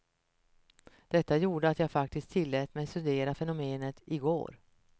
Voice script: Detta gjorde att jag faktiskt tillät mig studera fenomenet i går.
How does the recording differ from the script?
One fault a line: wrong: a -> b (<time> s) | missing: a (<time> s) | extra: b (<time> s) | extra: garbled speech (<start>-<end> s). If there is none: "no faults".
no faults